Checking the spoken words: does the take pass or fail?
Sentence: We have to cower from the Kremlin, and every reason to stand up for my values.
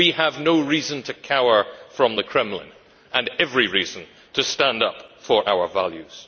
fail